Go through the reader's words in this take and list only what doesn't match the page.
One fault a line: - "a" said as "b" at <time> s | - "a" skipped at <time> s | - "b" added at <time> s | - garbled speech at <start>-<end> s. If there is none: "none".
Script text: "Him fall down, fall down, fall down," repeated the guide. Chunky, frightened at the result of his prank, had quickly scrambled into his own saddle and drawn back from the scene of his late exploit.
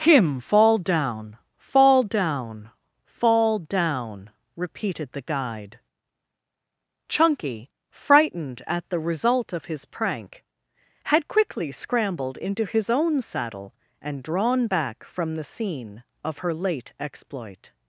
- "his" said as "her" at 16.4 s